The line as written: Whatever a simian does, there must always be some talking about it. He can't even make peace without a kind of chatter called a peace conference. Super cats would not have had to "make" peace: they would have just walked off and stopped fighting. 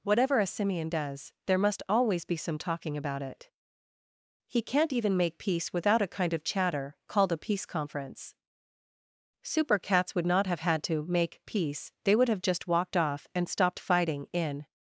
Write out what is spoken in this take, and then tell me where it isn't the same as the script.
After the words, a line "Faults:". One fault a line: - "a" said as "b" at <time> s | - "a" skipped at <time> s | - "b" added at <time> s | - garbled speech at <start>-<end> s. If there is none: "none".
Whatever a simian does, there must always be some talking about it. He can't even make peace without a kind of chatter called a peace conference. Super cats would not have had to "make" peace: they would have just walked off and stopped fighting. In
Faults:
- "In" added at 14.3 s